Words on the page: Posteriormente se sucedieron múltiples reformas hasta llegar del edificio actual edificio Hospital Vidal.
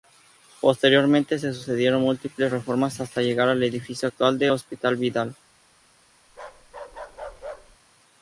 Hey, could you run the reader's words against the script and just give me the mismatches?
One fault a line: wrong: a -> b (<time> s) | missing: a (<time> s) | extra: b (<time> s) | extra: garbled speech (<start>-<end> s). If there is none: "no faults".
wrong: del -> al (3.5 s)
wrong: edificio -> del (4.4 s)